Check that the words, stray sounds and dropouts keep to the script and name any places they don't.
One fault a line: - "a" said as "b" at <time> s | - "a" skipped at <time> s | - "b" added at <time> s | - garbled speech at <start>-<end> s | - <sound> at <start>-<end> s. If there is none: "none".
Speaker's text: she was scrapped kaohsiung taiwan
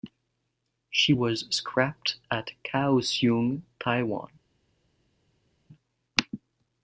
- "at" added at 2.3 s